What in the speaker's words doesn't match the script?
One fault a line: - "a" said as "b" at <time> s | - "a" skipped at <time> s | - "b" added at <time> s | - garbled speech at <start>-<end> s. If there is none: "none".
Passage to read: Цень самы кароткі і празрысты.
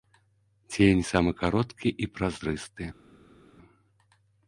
none